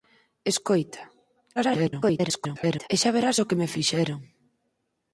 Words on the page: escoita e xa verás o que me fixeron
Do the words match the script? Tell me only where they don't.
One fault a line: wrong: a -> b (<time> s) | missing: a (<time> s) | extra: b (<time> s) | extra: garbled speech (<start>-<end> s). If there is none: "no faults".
extra: garbled speech (1.6-2.9 s)